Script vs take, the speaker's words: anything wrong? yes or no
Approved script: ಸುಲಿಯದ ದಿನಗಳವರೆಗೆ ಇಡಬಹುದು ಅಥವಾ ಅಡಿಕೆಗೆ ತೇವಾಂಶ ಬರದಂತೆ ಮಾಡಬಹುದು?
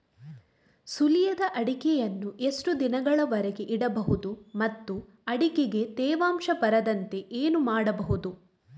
yes